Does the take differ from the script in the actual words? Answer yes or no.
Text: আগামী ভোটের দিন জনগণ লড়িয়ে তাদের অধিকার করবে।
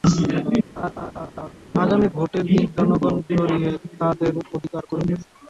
no